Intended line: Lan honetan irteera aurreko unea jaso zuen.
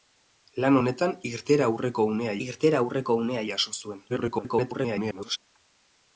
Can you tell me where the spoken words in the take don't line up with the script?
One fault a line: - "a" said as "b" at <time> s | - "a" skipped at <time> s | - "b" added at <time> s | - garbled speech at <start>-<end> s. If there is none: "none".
- "irteera aurreko unea" added at 2.4 s
- garbled speech at 4.1-5.4 s